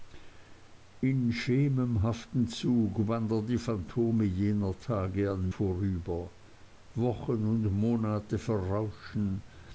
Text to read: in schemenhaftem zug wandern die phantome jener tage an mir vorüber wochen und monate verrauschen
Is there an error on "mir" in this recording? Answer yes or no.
yes